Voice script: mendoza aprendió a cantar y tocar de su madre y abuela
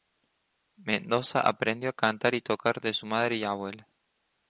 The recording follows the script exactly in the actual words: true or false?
true